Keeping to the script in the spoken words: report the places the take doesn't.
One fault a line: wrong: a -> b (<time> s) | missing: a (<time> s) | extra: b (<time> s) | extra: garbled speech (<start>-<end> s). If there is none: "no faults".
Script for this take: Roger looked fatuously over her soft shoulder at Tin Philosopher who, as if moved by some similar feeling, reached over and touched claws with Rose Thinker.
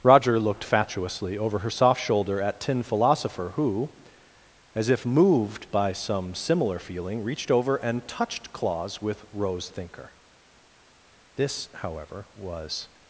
extra: This however was (11.4 s)